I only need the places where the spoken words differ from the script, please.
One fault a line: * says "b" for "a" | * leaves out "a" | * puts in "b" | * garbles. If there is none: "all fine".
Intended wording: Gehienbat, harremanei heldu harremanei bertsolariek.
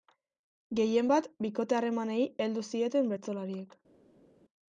* puts in "bikote"
* says "zieten" for "harremanei"